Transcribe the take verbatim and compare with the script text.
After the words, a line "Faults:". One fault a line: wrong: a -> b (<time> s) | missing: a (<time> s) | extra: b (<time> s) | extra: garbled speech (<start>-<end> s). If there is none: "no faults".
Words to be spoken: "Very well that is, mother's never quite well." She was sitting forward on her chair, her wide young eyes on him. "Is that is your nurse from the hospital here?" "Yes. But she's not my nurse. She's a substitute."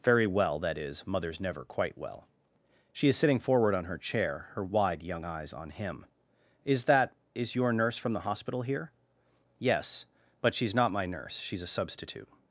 "Very well that is, mother's never quite well." She is sitting forward on her chair, her wide young eyes on him. "Is that is your nurse from the hospital here?" "Yes. But she's not my nurse. She's a substitute."
Faults:
wrong: was -> is (3.1 s)